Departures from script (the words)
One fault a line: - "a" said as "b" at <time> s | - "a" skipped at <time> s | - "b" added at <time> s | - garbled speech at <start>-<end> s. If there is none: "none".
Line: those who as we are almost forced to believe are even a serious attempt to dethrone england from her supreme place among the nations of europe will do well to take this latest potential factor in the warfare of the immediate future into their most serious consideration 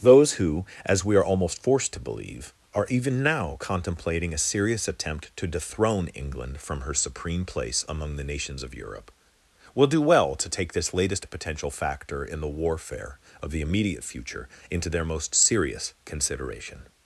- "now contemplating" added at 3.2 s